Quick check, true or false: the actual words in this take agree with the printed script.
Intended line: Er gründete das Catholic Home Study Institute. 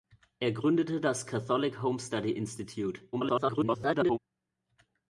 false